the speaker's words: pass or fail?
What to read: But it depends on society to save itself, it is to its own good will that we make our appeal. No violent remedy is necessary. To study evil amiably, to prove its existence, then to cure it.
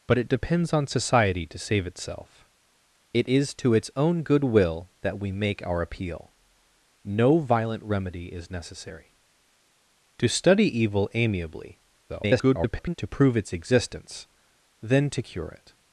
fail